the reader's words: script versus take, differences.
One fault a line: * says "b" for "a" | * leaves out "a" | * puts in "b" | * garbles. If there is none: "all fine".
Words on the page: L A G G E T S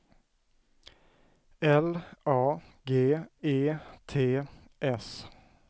* leaves out "G"